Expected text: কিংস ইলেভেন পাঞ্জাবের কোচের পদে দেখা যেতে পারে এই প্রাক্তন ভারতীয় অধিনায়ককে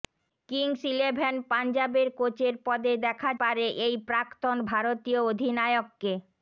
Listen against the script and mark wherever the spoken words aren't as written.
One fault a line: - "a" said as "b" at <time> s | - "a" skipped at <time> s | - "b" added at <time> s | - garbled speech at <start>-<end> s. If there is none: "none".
- "যেতে" skipped at 3.3 s